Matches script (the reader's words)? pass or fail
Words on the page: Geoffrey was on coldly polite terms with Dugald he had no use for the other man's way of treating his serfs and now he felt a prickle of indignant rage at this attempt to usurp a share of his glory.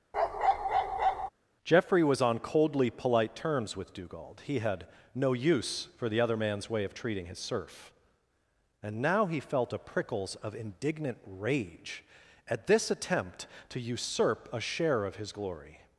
fail